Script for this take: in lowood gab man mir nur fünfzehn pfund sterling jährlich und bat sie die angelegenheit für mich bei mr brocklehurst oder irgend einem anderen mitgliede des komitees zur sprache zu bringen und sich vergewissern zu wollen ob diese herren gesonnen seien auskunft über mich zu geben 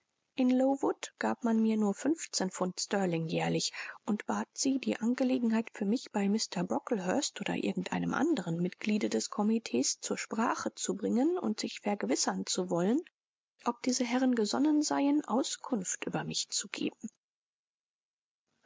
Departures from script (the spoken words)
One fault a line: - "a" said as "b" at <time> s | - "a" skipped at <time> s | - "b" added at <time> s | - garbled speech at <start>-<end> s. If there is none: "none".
none